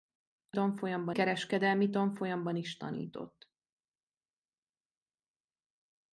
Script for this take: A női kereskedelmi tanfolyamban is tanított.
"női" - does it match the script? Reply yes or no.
no